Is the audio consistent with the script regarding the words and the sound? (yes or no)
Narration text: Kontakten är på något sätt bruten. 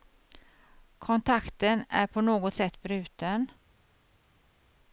yes